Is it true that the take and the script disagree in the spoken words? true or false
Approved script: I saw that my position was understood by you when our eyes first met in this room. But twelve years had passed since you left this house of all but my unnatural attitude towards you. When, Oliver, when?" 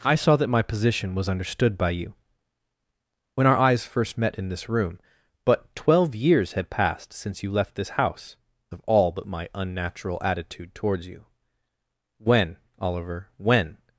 false